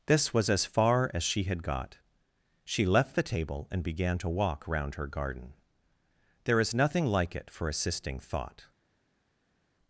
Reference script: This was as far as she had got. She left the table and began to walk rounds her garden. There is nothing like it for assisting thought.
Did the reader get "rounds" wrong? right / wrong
wrong